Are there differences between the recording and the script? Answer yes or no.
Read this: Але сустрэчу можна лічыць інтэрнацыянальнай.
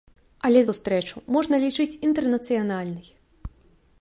no